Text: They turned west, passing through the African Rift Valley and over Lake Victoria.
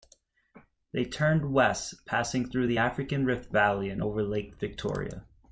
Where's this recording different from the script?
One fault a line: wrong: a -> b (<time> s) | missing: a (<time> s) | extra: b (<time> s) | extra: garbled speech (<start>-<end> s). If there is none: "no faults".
no faults